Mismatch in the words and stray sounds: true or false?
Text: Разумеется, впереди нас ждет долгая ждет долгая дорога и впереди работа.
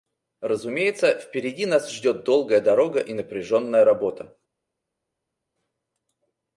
true